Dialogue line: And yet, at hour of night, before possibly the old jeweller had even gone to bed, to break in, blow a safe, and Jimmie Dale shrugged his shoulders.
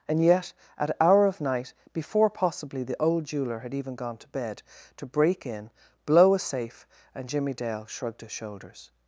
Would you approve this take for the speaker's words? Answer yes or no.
yes